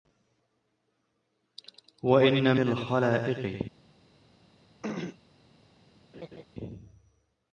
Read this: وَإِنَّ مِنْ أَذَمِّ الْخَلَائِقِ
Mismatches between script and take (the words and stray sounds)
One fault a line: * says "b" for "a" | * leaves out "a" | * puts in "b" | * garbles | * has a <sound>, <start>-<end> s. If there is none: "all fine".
* leaves out "مِنْ أَذَمِّ"
* has a throat clearing, 4.8-5.2 s
* has a laugh, 6.1-6.4 s